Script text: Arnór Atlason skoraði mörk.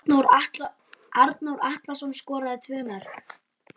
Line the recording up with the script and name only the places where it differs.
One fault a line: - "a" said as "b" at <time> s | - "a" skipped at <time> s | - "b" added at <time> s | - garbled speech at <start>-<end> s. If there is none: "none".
- "tvö" added at 2.7 s